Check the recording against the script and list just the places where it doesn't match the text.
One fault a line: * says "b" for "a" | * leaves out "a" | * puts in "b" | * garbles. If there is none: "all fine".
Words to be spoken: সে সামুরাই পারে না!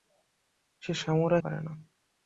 all fine